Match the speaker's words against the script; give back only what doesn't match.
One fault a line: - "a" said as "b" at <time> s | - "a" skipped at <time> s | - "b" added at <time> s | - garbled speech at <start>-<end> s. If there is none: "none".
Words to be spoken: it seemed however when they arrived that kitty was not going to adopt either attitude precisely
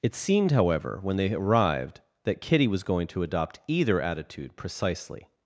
- "not" skipped at 2.8 s